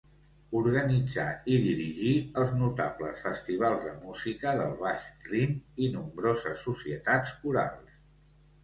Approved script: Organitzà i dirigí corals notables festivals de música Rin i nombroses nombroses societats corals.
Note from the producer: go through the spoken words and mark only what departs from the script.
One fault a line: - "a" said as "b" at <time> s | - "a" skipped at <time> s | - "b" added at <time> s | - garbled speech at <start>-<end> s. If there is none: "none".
- "corals" said as "els" at 2.4 s
- "del Baix" added at 4.6 s
- "nombroses" skipped at 6.7 s